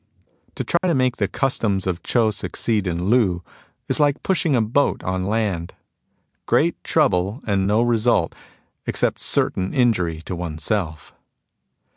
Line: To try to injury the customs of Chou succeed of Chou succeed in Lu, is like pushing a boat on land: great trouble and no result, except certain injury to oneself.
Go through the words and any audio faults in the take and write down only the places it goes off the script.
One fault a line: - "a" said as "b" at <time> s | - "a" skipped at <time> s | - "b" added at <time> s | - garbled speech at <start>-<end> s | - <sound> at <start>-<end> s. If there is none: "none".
- dropout at 0.8-0.8 s
- "injury" said as "make" at 0.9 s
- "of Chou succeed" skipped at 2.9 s